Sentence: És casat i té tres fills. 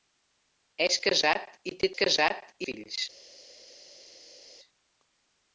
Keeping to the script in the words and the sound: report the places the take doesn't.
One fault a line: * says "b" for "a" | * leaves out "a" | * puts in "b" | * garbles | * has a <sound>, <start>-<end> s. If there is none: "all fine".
* says "casat" for "tres"